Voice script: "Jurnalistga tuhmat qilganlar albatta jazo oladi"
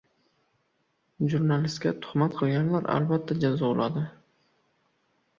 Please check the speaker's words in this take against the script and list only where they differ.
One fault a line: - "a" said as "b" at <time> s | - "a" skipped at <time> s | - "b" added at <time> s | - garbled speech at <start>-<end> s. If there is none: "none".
none